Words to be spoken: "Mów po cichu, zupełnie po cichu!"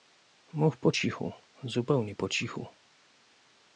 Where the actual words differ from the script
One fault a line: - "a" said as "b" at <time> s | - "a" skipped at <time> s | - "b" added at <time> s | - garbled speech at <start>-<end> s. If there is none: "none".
none